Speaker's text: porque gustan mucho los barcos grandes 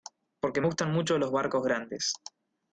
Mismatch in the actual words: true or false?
false